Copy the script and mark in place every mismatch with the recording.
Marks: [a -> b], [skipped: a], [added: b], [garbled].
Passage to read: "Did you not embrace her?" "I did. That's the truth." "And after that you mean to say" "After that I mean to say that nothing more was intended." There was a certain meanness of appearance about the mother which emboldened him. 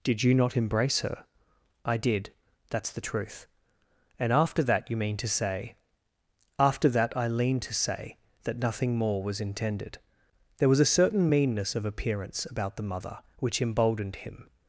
"Did you not embrace her?" "I did. That's the truth." "And after that you mean to say" "After that I [mean -> lean] to say that nothing more was intended." There was a certain meanness of appearance about the mother which emboldened him.